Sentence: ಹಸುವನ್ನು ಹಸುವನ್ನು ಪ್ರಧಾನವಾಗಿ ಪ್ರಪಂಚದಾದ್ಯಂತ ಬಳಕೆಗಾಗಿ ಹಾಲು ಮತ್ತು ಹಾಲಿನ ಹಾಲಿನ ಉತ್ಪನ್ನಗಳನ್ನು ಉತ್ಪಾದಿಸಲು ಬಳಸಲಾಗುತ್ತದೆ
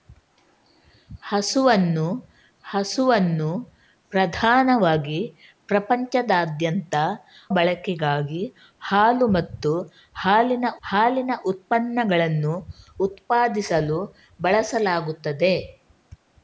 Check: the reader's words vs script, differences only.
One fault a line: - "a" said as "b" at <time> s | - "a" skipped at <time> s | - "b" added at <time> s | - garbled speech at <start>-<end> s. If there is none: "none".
none